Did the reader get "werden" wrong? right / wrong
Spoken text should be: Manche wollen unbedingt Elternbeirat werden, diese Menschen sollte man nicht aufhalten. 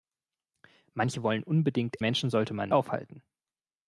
wrong